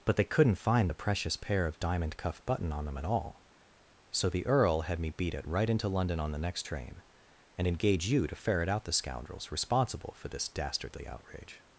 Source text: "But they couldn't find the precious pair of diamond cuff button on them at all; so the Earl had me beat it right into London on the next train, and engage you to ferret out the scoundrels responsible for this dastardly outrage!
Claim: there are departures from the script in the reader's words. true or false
false